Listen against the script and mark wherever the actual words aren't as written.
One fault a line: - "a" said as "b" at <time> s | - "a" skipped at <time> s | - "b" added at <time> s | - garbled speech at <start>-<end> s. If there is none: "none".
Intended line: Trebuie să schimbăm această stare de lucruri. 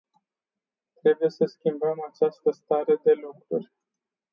none